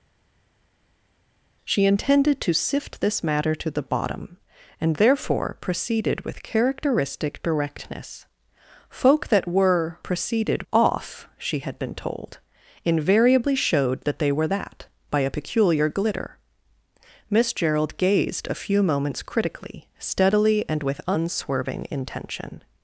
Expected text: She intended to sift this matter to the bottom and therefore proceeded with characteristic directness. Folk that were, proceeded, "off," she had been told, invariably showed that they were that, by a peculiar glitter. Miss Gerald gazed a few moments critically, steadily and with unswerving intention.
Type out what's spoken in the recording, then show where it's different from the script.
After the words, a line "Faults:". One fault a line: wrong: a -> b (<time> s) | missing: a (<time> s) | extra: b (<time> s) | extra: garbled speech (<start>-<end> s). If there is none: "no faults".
She intended to sift this matter to the bottom and therefore proceeded with characteristic directness. Folk that were, proceeded, "off," she had been told, invariably showed that they were that, by a peculiar glitter. Miss Gerald gazed a few moments critically, steadily and with unswerving intention.
Faults:
no faults